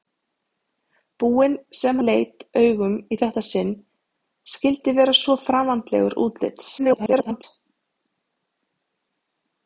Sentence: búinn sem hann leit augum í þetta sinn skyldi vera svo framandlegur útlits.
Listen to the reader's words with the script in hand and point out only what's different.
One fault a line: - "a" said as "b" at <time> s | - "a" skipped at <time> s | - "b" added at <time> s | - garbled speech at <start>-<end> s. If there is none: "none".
- "hann" skipped at 2.0 s
- garbled speech at 6.8-7.4 s